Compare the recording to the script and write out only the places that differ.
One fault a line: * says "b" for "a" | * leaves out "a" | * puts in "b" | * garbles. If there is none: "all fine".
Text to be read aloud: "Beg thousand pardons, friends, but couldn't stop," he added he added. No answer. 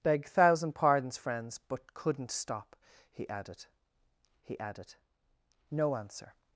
all fine